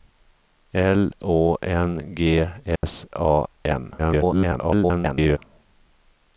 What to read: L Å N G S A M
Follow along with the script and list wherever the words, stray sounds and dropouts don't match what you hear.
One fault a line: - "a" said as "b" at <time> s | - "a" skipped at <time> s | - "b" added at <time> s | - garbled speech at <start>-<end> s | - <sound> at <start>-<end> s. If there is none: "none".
- dropout at 2.8-2.8 s
- garbled speech at 4.0-5.4 s